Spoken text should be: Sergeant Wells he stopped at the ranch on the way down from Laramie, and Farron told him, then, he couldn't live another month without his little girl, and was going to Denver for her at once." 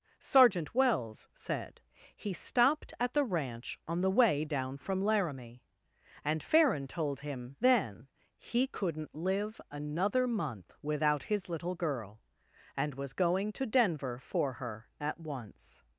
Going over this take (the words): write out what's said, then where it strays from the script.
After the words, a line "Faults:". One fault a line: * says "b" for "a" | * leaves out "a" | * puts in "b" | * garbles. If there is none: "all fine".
Sergeant Wells said he stopped at the ranch on the way down from Laramie, and Farron told him, then, he couldn't live another month without his little girl, and was going to Denver for her at once."
Faults:
* puts in "said"